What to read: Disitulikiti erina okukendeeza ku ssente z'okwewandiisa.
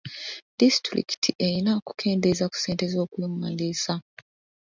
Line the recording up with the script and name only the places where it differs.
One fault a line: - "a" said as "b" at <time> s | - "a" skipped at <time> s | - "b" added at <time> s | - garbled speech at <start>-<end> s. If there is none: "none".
none